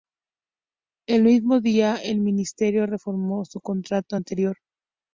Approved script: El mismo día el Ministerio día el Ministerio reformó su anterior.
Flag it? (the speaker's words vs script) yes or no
yes